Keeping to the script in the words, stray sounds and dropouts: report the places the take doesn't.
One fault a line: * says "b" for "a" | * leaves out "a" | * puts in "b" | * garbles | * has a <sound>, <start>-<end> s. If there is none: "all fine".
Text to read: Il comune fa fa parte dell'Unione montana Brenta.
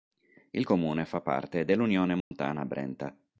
* leaves out "fa"
* has a dropout, 2.2-2.3 s